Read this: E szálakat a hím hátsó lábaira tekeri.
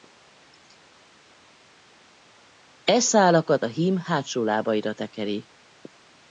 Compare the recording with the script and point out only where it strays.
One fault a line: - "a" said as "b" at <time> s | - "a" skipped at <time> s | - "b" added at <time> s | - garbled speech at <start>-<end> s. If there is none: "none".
none